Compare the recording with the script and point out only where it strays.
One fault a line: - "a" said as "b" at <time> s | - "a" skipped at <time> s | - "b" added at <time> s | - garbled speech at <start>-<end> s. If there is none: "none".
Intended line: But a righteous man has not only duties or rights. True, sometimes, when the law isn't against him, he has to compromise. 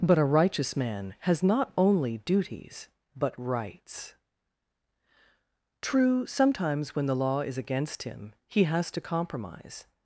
- "or" said as "but" at 3.1 s
- "isn't" said as "is" at 7.4 s